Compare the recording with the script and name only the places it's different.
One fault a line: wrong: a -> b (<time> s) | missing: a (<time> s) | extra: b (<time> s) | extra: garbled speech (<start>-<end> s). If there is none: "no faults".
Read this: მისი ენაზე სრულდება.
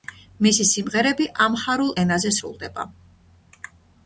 extra: სიმღერები ამჰარულ (0.7 s)